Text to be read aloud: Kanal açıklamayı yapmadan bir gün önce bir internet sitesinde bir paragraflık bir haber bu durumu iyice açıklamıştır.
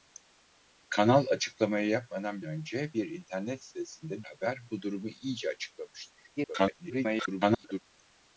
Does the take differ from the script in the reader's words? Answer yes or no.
yes